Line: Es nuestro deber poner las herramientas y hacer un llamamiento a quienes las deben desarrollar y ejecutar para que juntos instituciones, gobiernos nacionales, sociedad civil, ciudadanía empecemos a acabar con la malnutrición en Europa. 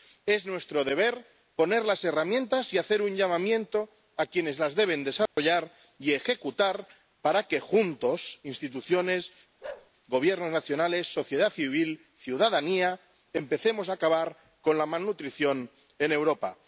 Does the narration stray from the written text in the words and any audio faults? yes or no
yes